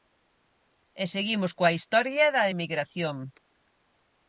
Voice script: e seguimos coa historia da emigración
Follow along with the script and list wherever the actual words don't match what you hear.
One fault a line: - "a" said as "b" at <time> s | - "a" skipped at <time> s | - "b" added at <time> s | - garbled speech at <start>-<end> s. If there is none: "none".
none